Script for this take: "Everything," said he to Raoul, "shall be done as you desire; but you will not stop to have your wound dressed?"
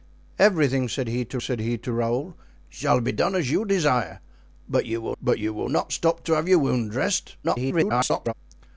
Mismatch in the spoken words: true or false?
true